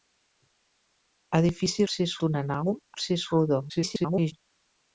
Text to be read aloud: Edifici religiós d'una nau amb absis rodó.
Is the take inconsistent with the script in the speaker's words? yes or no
yes